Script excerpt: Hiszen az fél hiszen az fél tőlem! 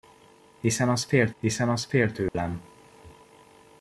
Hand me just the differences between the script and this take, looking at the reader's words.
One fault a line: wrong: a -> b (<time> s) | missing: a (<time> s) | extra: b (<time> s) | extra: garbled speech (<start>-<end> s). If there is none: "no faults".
no faults